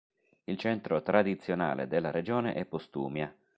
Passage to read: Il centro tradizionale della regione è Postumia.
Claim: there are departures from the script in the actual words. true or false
false